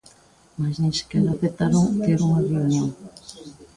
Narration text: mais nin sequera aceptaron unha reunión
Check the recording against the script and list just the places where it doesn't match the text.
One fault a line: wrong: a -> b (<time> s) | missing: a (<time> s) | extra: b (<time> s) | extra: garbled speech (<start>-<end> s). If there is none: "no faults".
extra: ter (2.0 s)